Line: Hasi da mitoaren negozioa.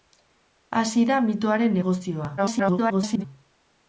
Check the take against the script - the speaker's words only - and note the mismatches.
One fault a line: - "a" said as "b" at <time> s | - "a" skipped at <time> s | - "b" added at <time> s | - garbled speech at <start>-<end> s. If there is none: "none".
- garbled speech at 2.4-3.3 s